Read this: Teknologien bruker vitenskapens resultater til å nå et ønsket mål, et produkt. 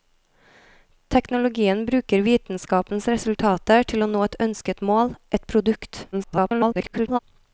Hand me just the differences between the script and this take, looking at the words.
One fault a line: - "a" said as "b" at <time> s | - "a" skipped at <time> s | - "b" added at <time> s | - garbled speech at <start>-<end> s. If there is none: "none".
- garbled speech at 6.1-7.2 s